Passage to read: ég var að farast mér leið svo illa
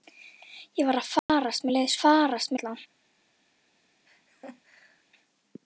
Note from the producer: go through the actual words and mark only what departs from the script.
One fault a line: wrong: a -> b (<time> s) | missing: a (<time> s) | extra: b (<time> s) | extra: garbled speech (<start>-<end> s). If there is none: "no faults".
wrong: svo -> farast (2.0 s)